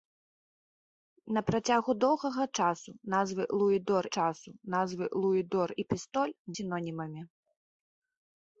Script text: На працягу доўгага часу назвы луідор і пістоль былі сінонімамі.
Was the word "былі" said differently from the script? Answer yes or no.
yes